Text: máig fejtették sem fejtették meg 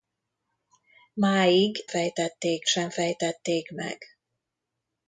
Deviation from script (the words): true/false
false